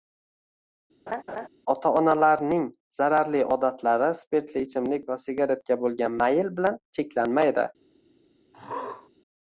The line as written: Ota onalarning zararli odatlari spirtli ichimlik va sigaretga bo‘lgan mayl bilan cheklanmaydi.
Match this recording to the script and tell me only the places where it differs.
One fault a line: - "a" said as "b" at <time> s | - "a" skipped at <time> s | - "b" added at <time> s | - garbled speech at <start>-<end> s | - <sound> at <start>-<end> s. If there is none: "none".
- laugh at 1.1-1.5 s
- throat clearing at 8.5-9.1 s